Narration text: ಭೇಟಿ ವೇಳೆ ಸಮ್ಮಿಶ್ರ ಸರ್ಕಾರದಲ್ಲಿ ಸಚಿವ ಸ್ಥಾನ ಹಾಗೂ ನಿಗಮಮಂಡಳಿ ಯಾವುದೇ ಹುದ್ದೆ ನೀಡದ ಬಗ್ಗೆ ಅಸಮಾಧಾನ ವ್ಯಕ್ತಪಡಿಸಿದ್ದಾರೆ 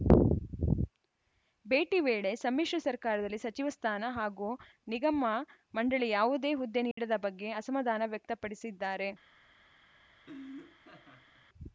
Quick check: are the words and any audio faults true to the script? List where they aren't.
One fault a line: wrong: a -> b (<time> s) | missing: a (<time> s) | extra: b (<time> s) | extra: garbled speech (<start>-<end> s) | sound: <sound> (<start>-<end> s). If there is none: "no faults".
sound: dropout (6.9-7.0 s)
sound: laugh (10.2-11.5 s)